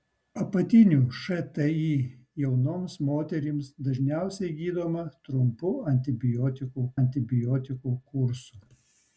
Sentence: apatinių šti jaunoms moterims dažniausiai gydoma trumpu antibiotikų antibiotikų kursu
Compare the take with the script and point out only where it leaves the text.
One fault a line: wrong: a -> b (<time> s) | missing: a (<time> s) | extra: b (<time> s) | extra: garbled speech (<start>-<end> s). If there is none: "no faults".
no faults